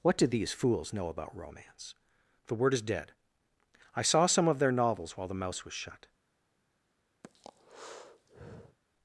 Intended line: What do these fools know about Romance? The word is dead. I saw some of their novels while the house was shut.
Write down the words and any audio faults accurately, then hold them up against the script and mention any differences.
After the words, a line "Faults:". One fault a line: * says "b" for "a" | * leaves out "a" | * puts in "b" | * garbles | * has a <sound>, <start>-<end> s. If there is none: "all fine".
What do these fools know about Romance? The word is dead. I saw some of their novels while the mouse was shut.
Faults:
* says "mouse" for "house"
* has a breath, 7.2-8.8 s